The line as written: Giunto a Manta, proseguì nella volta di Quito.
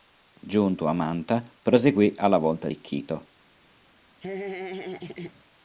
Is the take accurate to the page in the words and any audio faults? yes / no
no